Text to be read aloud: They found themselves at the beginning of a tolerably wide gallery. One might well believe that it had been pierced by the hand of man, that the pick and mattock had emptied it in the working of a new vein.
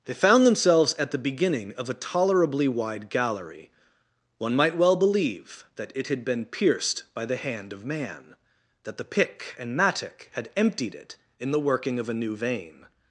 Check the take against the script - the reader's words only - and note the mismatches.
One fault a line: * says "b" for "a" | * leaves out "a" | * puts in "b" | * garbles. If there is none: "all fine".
all fine